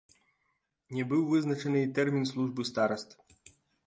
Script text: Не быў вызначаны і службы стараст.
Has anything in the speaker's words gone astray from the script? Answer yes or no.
yes